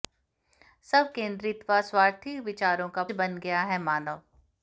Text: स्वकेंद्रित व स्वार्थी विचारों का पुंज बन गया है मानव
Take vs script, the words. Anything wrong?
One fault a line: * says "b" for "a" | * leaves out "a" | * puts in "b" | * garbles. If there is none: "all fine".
* leaves out "पुंज"